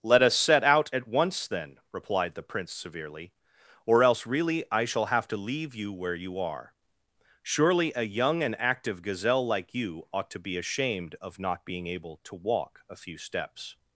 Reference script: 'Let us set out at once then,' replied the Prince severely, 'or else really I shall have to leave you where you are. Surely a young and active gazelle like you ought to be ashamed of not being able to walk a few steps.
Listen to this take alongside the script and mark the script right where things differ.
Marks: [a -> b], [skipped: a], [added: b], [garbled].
'Let us set out at once then,' replied the Prince severely, 'or else really I shall have to leave you where you are. Surely a young and active gazelle like you ought to be ashamed of not being able to walk a few steps.